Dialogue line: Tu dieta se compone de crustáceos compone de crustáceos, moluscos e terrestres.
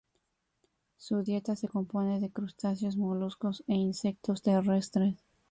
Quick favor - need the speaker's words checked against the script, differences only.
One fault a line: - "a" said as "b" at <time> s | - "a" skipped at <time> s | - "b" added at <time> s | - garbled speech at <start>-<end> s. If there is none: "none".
- "Tu" said as "Su" at 1.0 s
- "compone de crustáceos" skipped at 3.0 s
- "insectos" added at 3.7 s